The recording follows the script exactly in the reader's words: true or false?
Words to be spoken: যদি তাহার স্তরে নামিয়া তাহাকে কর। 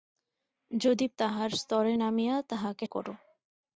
true